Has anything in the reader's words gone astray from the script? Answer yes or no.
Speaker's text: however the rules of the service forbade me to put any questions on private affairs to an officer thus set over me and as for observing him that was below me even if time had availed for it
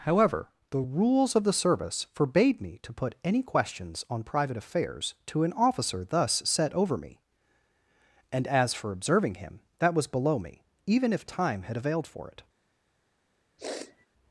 no